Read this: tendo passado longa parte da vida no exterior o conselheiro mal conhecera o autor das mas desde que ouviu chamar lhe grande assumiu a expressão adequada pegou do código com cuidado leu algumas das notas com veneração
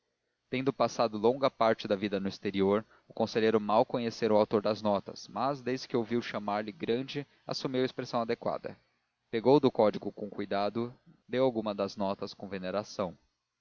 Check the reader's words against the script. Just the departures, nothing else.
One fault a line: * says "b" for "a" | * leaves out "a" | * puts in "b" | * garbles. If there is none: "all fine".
* puts in "notas"